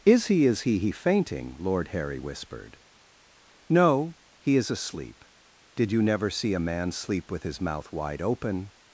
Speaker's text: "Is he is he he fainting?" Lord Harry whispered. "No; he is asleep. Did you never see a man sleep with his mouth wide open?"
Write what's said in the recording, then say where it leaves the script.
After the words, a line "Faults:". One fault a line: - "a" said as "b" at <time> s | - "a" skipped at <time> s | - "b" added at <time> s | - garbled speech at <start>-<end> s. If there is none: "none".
"Is he is he he fainting?" Lord Harry whispered. "No; he is asleep. Did you never see a man sleep with his mouth wide open?"
Faults:
none